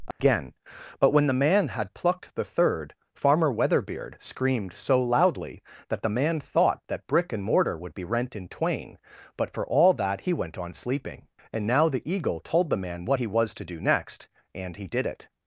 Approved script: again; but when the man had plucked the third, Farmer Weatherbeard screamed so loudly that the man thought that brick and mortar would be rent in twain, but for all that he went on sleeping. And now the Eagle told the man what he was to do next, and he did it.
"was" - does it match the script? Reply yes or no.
yes